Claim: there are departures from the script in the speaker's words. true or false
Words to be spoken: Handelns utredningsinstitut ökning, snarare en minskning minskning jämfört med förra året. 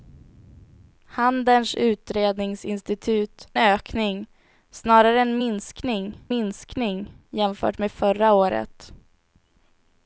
false